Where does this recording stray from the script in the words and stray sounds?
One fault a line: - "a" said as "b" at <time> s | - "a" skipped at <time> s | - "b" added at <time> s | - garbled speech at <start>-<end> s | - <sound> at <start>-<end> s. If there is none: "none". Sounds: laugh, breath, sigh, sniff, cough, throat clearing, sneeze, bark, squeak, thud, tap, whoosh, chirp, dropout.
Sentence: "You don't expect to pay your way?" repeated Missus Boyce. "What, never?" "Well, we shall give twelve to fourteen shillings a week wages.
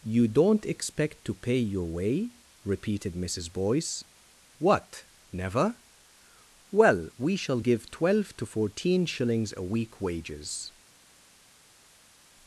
none